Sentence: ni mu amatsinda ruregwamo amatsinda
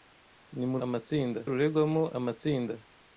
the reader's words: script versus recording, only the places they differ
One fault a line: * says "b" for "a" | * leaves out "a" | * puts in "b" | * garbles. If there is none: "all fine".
all fine